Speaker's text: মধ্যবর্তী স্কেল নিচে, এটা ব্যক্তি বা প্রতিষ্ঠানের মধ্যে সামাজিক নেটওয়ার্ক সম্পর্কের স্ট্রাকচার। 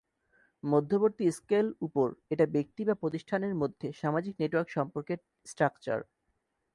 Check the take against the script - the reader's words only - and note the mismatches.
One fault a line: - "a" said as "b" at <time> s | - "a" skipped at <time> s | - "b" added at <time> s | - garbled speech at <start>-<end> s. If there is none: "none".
- "নিচে" said as "উপর" at 1.8 s